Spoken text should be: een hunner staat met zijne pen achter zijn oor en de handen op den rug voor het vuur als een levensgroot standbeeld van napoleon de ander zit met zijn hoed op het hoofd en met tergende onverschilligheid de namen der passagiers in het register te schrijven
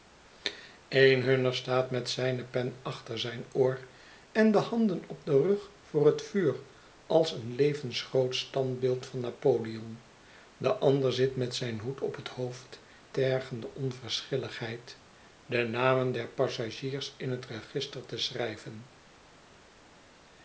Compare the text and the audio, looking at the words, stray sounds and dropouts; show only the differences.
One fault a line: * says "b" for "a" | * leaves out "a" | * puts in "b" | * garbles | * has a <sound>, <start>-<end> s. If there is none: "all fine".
* leaves out "en met"